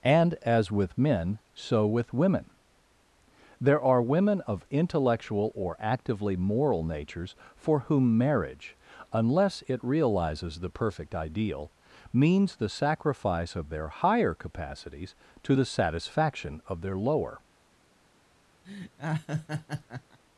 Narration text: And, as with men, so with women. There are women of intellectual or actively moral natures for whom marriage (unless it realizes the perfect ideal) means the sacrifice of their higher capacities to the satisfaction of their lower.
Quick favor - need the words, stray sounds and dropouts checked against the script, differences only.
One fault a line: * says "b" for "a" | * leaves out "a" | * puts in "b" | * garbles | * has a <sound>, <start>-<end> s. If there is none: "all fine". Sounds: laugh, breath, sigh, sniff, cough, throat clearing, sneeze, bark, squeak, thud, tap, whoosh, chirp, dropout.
* has a laugh, 18.6-20.2 s